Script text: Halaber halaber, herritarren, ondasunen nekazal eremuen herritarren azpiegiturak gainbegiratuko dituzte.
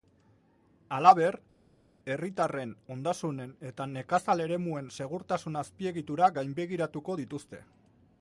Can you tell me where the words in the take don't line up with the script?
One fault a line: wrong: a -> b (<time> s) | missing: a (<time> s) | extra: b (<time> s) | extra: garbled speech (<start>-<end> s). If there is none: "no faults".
missing: halaber (1.4 s)
extra: eta (3.7 s)
wrong: herritarren -> segurtasun (5.0 s)